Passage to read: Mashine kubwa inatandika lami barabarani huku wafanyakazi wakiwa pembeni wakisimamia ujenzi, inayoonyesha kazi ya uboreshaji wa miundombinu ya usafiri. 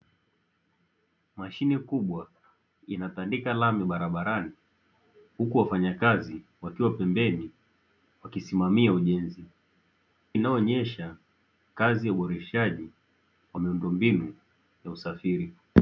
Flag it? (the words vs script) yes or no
no